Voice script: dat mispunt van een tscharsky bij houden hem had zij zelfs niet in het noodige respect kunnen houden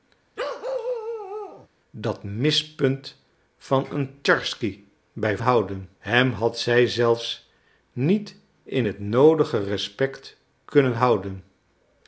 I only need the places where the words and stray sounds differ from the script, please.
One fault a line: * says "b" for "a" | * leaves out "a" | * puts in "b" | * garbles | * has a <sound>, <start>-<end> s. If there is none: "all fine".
* has a bark, 0.4-1.7 s